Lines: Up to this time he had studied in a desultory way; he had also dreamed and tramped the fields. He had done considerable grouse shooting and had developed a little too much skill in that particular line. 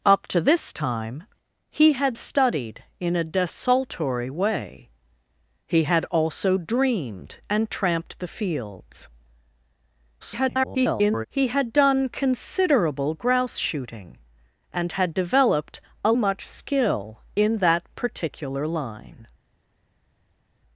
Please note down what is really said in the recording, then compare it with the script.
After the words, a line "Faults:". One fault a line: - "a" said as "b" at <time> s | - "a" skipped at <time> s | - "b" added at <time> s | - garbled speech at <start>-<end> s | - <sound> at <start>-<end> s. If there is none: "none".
Up to this time he had studied in a desultory way; he had also dreamed and tramped the fields. [garbled] He had done considerable grouse shooting and had developed a much skill in that particular line.
Faults:
- garbled speech at 10.2-11.3 s
- "little too" skipped at 16.1 s